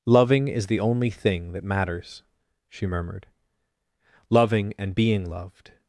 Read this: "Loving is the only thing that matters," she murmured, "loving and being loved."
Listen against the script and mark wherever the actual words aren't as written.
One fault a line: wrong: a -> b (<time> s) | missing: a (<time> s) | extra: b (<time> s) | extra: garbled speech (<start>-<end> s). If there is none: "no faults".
no faults